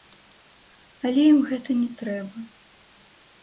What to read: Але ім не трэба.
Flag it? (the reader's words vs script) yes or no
yes